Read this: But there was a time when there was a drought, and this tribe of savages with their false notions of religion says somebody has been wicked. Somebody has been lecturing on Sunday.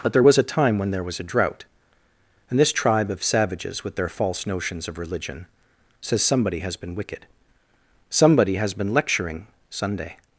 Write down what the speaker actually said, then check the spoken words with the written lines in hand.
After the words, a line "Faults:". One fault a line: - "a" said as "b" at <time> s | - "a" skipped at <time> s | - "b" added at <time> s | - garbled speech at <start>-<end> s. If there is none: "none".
But there was a time when there was a drought, and this tribe of savages with their false notions of religion says somebody has been wicked. Somebody has been lecturing Sunday.
Faults:
- "on" skipped at 9.5 s